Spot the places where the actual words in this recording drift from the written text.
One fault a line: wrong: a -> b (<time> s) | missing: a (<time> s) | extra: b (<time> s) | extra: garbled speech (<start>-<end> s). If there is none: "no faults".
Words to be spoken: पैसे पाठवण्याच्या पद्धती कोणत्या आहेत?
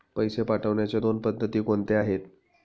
extra: दोन (1.0 s)